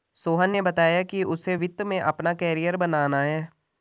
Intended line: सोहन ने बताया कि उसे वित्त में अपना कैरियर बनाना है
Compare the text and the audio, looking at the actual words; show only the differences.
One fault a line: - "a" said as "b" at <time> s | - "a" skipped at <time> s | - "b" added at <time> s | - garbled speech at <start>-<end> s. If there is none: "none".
none